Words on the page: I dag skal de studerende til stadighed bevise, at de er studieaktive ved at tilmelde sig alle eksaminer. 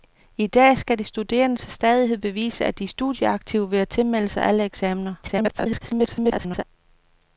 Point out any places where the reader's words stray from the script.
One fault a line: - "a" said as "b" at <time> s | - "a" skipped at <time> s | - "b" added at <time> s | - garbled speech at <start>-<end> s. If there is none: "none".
- garbled speech at 5.2-6.6 s